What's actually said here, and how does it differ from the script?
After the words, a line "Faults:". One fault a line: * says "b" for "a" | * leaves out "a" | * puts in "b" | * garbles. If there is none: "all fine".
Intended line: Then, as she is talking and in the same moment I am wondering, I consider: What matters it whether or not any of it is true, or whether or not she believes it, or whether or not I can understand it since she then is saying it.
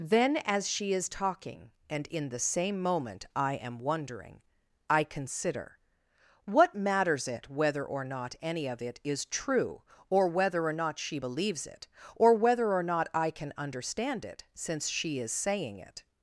Then, as she is talking and in the same moment I am wondering, I consider: What matters it whether or not any of it is true, or whether or not she believes it, or whether or not I can understand it since she is saying it.
Faults:
* leaves out "then"